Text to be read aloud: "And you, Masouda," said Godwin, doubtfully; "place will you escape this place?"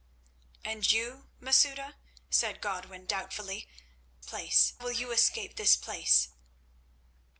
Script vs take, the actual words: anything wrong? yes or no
no